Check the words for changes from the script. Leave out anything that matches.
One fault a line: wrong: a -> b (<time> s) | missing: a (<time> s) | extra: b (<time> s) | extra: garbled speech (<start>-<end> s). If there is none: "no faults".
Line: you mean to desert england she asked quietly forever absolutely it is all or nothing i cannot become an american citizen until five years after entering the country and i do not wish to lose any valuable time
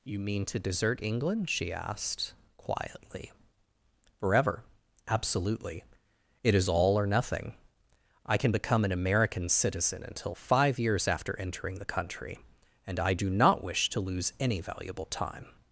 wrong: cannot -> can (8.4 s)